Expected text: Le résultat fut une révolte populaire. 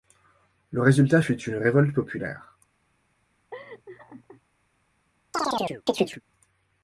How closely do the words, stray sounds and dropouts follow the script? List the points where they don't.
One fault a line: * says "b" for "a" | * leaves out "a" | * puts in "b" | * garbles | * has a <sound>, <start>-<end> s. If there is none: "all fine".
* has a laugh, 3.5-4.4 s
* has a chirp, 5.3-6.2 s